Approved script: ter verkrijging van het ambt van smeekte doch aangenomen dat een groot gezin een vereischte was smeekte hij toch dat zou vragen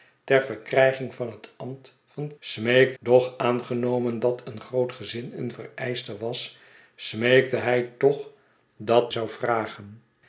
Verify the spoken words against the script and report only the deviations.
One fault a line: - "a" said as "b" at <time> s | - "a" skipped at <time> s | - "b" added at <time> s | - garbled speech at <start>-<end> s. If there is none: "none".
none